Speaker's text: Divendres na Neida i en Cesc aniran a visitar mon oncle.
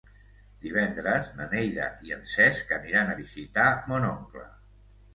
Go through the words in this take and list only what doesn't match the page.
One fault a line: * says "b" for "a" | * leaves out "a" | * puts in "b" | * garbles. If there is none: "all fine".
all fine